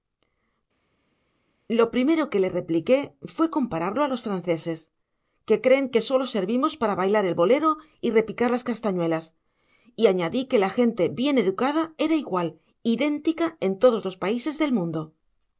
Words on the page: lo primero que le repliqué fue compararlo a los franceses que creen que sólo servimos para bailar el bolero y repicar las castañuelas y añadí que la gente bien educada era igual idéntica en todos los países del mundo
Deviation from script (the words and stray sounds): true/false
false